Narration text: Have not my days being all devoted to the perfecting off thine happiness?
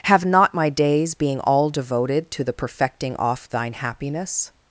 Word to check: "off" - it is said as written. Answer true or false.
true